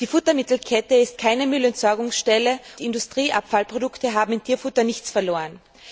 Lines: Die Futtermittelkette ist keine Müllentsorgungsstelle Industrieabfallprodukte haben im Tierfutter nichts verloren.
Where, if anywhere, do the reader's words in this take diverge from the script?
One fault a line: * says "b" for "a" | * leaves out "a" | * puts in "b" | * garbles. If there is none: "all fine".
all fine